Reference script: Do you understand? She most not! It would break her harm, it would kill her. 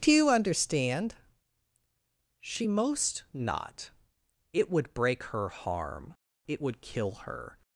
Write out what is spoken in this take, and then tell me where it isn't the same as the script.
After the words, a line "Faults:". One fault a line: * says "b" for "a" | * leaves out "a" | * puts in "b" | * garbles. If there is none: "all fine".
Do you understand? She most not! It would break her harm, it would kill her.
Faults:
all fine